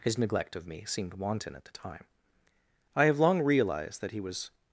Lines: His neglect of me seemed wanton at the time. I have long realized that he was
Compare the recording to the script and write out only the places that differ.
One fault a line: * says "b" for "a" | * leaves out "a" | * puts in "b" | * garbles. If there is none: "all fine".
all fine